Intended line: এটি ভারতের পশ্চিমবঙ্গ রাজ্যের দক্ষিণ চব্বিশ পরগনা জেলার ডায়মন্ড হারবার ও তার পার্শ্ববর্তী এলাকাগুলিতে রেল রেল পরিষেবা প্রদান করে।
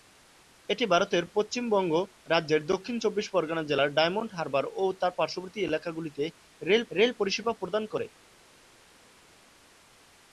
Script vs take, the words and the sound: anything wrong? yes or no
no